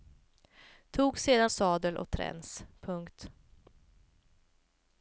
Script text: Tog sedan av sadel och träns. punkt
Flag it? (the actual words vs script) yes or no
yes